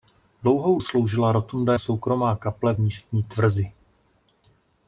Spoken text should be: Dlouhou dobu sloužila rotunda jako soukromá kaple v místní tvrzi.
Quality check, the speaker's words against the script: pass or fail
fail